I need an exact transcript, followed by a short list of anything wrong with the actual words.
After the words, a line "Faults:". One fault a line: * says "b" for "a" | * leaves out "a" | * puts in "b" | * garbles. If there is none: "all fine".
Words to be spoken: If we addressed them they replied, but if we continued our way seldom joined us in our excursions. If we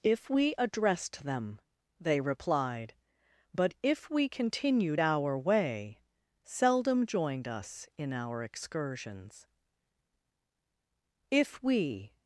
If we addressed them they replied, but if we continued our way seldom joined us in our excursions. If we
Faults:
all fine